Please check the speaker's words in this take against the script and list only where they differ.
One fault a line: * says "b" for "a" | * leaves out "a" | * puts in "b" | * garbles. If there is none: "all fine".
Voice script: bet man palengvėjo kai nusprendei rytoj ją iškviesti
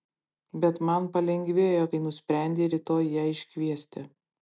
all fine